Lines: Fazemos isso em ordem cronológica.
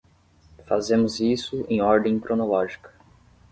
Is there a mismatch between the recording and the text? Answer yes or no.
no